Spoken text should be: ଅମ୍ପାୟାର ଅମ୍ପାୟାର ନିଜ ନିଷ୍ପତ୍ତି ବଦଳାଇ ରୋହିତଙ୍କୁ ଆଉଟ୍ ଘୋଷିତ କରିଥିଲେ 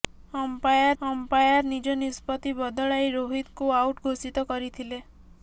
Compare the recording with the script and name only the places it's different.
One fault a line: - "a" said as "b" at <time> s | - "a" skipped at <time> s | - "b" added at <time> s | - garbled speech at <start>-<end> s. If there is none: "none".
none